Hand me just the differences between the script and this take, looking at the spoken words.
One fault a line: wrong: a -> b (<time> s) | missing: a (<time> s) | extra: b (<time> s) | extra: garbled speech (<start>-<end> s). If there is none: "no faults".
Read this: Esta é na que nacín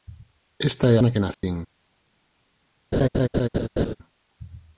no faults